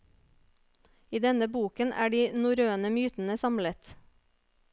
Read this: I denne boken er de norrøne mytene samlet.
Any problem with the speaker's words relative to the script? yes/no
no